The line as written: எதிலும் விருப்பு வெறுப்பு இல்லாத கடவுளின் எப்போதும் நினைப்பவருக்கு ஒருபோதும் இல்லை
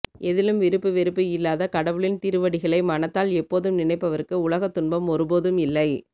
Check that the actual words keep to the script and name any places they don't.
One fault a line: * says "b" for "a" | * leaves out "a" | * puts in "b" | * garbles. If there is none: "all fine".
* puts in "திருவடிகளை மனத்தால்"
* puts in "உலகத் துன்பம்"